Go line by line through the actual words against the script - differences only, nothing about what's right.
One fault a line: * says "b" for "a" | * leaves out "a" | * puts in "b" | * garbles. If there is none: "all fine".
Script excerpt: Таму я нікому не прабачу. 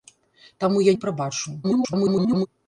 * leaves out "нікому"
* garbles